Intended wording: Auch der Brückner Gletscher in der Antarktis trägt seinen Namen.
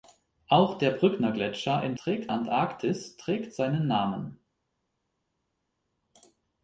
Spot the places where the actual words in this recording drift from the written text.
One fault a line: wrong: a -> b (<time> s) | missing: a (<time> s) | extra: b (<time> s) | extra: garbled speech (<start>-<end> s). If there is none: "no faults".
wrong: der -> trägt (2.0 s)